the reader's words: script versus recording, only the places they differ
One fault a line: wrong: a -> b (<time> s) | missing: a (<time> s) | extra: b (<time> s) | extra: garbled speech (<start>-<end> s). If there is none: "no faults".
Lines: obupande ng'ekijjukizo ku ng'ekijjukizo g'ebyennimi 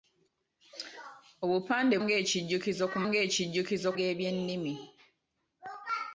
no faults